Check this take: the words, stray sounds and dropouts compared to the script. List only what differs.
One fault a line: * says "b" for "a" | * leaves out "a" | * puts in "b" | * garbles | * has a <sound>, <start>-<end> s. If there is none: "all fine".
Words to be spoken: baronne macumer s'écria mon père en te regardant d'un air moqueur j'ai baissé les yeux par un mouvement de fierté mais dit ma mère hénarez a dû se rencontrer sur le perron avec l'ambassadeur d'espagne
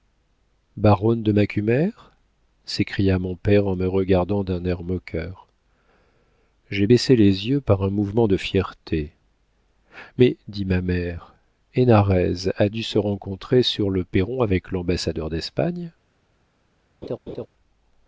* puts in "de"
* says "me" for "te"
* has a laugh, 17.0-17.5 s